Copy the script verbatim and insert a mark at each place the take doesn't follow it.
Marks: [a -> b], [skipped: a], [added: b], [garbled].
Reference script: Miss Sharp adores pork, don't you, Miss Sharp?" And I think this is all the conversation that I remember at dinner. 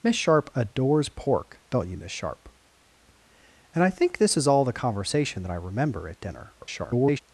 Miss Sharp adores pork, don't you, Miss Sharp?" And I think this is all the conversation that I remember at dinner. [garbled]